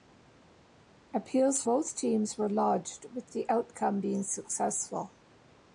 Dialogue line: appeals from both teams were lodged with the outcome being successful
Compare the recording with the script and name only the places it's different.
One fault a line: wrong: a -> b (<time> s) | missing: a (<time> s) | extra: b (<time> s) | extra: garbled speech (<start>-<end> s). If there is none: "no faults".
missing: from (1.6 s)